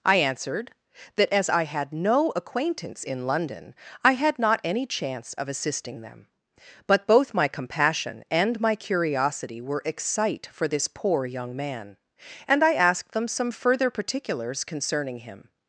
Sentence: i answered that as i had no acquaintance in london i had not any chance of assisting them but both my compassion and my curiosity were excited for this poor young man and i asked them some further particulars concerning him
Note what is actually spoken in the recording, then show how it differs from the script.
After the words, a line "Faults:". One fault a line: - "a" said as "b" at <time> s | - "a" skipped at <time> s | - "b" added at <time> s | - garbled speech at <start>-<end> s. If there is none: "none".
i answered that as i had no acquaintance in london i had not any chance of assisting them but both my compassion and my curiosity were excite for this poor young man and i asked them some further particulars concerning him
Faults:
- "excited" said as "excite" at 9.9 s